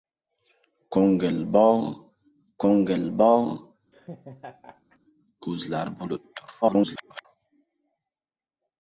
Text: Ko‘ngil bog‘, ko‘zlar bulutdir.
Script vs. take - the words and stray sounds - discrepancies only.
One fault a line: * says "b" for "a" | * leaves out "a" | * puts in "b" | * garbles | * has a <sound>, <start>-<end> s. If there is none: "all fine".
* puts in "ko‘ngil bog"
* has a laugh, 3.9-5.0 s
* garbles